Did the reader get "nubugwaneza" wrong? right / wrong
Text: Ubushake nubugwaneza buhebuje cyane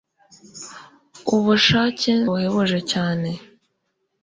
wrong